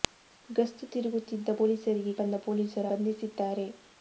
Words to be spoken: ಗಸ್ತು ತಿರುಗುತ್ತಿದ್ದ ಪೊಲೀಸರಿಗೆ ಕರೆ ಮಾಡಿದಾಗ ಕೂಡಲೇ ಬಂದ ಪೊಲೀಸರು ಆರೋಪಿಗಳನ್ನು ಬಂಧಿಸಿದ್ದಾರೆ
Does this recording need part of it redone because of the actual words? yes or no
yes